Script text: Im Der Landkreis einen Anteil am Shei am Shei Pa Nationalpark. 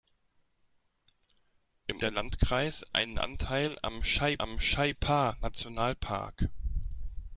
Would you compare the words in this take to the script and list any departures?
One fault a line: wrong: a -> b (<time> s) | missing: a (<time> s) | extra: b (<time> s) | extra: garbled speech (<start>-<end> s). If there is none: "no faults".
no faults